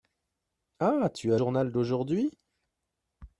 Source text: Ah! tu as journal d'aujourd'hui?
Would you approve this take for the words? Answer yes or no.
yes